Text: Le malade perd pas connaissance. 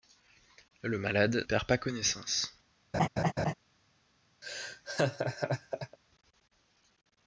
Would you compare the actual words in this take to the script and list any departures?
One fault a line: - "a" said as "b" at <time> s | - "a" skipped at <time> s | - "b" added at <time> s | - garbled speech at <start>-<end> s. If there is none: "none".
none